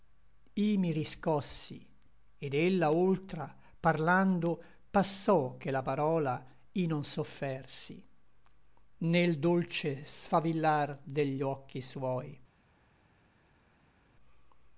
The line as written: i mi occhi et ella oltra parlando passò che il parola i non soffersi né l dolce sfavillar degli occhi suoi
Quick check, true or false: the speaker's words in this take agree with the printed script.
false